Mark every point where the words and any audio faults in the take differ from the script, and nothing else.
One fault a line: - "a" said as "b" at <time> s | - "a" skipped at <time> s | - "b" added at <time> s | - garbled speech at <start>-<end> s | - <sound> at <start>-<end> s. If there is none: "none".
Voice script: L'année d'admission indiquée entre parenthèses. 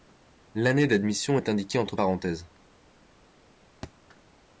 - "est" added at 1.3 s
- thud at 3.8-3.9 s